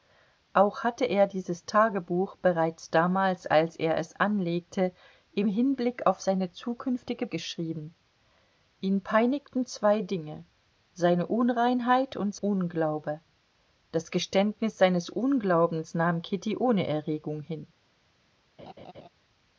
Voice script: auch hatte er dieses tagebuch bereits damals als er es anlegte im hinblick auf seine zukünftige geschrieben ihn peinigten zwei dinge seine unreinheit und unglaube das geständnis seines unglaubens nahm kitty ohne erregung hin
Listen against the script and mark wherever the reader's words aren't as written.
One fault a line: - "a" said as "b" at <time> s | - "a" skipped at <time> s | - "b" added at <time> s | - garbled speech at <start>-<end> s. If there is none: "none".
none